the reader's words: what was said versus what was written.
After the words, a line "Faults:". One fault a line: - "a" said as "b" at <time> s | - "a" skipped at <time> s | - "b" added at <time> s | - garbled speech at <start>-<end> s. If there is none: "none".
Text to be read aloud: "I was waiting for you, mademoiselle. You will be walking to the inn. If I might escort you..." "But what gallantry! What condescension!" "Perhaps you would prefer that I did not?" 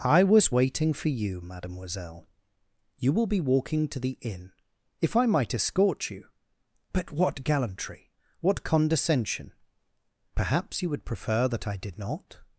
"I was waiting for you, mademoiselle. You will be walking to the inn. If I might escort you..." "But what gallantry! What condescension!" "Perhaps you would prefer that I did not?"
Faults:
none